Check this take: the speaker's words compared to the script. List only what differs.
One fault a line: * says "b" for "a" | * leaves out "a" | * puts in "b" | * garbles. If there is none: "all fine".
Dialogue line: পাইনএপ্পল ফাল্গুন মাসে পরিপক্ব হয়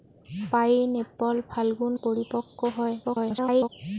* leaves out "মাসে"
* garbles